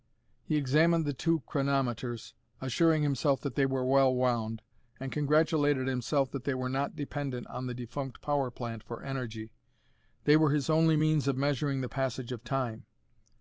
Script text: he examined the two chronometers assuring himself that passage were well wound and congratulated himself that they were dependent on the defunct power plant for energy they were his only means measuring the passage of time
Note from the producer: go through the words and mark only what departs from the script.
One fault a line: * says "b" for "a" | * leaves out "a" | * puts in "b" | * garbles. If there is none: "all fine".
* says "they" for "passage"
* puts in "not"
* puts in "of"